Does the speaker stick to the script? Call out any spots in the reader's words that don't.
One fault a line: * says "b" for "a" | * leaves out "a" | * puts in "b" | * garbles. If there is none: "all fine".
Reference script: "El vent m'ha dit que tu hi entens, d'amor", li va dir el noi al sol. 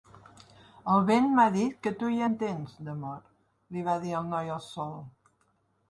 all fine